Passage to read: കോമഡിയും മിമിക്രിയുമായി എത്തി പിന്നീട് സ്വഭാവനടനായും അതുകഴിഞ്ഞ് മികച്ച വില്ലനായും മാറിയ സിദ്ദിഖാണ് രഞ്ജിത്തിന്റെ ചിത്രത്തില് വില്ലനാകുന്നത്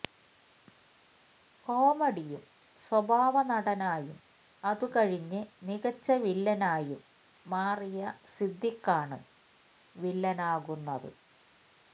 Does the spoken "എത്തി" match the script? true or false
false